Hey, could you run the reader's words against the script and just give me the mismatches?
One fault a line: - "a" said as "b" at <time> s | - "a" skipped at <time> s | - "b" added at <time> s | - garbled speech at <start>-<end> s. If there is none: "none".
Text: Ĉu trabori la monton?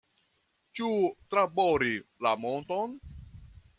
none